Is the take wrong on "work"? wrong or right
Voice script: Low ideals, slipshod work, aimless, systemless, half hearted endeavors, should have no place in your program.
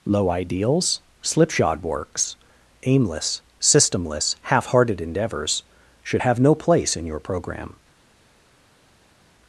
wrong